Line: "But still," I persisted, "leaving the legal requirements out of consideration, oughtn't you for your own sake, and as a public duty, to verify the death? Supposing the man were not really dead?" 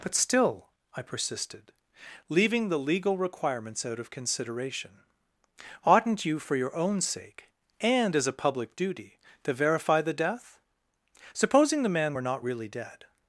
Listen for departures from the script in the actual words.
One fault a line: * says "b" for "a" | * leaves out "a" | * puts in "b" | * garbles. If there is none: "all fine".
all fine